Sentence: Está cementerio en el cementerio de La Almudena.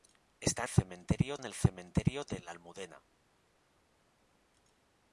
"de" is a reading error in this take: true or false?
false